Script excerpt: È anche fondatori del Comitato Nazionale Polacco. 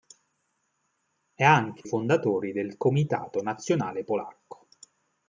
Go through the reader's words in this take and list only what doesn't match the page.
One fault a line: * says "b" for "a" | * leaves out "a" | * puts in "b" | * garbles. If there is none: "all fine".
all fine